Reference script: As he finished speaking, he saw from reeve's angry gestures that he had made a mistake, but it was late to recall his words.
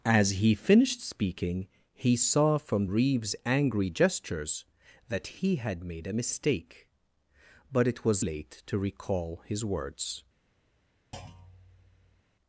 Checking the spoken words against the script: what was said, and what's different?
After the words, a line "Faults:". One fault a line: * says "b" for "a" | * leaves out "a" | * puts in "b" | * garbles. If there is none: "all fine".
As he finished speaking, he saw from reeve's angry gestures that he had made a mistake, but it was late to recall his words.
Faults:
all fine